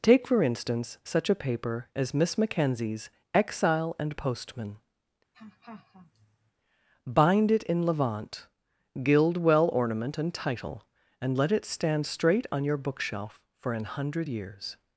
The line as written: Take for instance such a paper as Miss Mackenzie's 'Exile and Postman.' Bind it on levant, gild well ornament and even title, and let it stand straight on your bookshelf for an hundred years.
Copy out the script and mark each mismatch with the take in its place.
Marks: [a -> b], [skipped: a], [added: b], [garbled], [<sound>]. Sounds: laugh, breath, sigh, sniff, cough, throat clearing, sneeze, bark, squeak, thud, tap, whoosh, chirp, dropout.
Take for instance such a paper as Miss Mackenzie's 'Exile and Postman.' [laugh] Bind it [on -> in] levant, gild well ornament and [skipped: even] title, and let it stand straight on your bookshelf for an hundred years.